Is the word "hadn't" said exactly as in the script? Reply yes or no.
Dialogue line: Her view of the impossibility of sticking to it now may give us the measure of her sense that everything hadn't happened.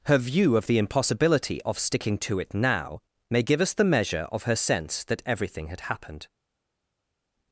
no